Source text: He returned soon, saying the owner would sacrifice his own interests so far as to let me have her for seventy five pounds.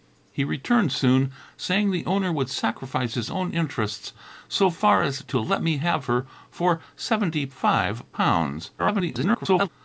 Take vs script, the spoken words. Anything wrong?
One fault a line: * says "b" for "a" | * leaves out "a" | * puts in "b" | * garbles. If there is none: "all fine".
* garbles